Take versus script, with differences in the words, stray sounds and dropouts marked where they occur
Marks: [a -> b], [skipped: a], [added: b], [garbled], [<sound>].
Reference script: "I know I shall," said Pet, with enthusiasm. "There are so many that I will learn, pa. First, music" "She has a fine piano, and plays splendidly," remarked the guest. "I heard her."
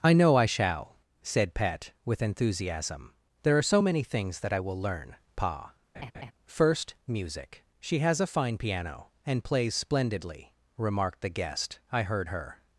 "I know I shall," said Pet, with enthusiasm. "There are so many [added: things] that I will learn, pa. [laugh] First, music" "She has a fine piano, and plays splendidly," remarked the guest. "I heard her."